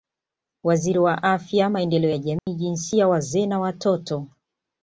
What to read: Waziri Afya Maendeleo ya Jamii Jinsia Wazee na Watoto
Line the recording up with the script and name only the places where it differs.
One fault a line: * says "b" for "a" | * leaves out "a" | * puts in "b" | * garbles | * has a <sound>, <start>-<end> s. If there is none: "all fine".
* puts in "wa"
* has a dropout, 2.4-2.5 s